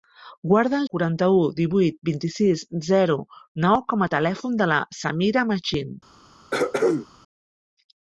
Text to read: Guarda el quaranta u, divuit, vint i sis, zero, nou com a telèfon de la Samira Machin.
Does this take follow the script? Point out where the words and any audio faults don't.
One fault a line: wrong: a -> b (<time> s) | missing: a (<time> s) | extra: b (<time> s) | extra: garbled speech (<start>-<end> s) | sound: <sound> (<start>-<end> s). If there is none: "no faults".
sound: throat clearing (6.5-7.1 s)